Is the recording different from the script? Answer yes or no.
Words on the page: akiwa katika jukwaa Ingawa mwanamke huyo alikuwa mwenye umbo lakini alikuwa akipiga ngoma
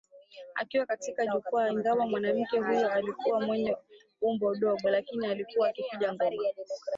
yes